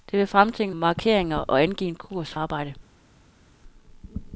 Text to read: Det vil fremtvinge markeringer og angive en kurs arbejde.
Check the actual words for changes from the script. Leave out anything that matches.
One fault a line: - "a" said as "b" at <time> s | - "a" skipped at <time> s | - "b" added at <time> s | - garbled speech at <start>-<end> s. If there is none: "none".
none